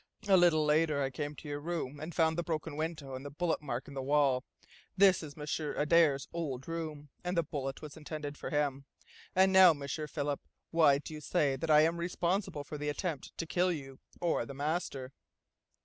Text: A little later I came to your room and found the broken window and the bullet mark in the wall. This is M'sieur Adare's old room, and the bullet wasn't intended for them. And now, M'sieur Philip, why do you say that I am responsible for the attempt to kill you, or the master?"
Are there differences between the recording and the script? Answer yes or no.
yes